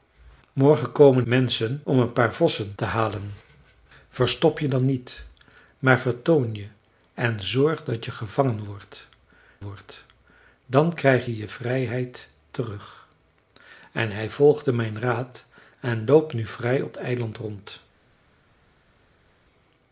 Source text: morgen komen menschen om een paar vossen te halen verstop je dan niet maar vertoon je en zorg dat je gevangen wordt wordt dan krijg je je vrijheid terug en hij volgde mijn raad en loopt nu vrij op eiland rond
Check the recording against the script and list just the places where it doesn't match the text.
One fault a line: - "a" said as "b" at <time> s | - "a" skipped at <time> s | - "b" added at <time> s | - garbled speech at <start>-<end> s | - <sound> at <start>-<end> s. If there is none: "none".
none